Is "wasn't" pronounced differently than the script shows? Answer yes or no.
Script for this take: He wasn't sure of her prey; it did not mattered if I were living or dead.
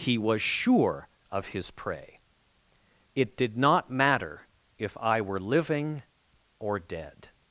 yes